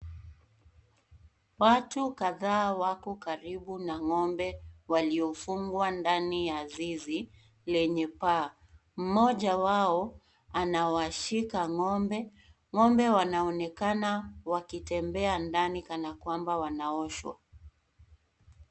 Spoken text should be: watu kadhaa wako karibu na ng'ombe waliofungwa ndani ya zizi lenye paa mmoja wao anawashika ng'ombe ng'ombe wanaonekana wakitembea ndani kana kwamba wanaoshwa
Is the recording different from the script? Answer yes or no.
no